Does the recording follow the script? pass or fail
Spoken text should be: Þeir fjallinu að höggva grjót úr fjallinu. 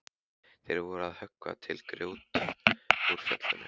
fail